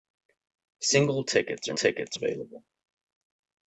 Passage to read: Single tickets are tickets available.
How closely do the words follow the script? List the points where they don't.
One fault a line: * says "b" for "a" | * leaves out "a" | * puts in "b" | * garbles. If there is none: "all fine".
all fine